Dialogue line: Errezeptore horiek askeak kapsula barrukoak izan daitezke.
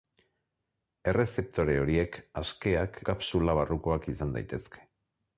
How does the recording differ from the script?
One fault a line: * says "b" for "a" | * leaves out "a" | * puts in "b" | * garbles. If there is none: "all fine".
all fine